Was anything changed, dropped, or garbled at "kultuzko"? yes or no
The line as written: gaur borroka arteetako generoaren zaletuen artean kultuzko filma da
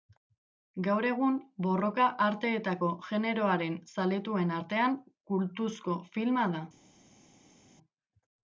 no